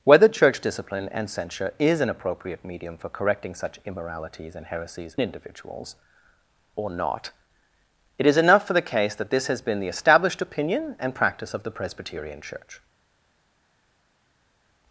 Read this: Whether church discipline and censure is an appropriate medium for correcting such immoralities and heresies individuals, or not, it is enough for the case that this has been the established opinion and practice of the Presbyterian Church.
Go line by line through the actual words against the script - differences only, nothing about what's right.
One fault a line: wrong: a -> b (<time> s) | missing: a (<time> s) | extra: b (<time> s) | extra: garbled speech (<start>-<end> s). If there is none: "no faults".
no faults